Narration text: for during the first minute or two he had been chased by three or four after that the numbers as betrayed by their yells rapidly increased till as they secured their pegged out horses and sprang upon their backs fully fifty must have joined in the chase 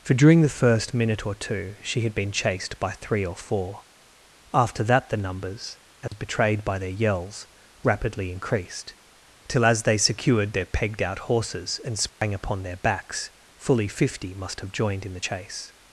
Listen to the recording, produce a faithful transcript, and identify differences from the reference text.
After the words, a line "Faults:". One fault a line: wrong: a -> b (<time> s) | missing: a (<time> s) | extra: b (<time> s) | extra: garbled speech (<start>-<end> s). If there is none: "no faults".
for during the first minute or two she had been chased by three or four after that the numbers as betrayed by their yells rapidly increased till as they secured their pegged out horses and sprang upon their backs fully fifty must have joined in the chase
Faults:
wrong: he -> she (1.8 s)